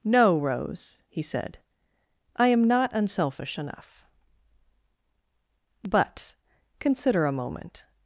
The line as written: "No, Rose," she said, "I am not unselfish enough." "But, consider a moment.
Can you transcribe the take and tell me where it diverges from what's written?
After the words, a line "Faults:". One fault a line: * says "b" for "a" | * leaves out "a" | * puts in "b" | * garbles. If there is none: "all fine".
"No, Rose," he said, "I am not unselfish enough." "But, consider a moment.
Faults:
* says "he" for "she"